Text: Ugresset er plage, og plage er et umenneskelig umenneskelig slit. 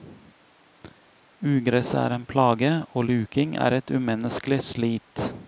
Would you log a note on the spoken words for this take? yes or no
yes